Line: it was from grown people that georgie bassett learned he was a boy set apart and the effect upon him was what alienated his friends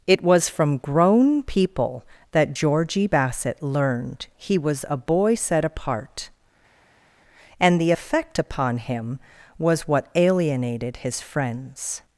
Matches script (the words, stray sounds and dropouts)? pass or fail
pass